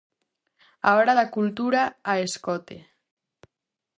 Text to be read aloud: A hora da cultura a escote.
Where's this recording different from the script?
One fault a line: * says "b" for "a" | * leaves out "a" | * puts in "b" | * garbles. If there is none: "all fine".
all fine